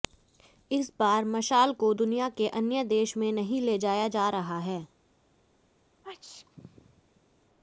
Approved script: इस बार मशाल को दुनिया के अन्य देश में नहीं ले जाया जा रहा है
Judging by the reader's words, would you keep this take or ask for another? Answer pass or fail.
pass